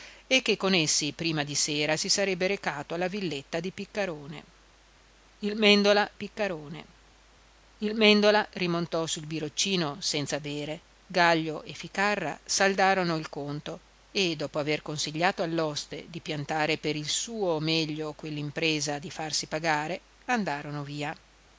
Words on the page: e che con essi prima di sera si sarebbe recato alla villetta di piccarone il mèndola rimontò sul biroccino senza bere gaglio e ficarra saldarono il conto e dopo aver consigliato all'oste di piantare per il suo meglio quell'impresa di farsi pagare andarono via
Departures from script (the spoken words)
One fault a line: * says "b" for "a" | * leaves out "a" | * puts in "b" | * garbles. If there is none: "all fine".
* puts in "piccarone il mèndola"